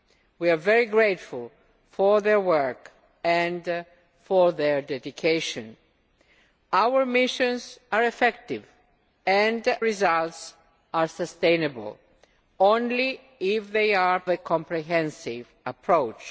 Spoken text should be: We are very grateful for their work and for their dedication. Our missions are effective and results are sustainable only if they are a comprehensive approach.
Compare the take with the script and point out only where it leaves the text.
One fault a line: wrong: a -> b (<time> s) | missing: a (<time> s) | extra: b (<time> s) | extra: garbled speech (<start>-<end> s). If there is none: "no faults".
no faults